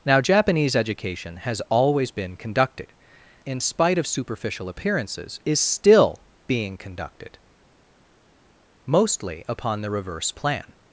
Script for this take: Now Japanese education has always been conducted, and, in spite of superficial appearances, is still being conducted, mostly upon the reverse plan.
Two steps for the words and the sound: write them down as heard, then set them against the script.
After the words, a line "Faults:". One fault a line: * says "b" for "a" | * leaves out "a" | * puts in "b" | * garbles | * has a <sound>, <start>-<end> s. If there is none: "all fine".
Now Japanese education has always been conducted, in spite of superficial appearances, is still being conducted, mostly upon the reverse plan.
Faults:
* leaves out "and"